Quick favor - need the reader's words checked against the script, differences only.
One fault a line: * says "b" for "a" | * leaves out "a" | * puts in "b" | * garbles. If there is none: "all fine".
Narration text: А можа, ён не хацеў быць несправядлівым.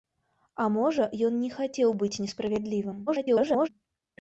* garbles